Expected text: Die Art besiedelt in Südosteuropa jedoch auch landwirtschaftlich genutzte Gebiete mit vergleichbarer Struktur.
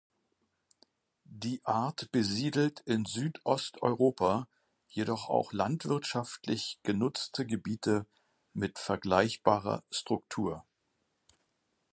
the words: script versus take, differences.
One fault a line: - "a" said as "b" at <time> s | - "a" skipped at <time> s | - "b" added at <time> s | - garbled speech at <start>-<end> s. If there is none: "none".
none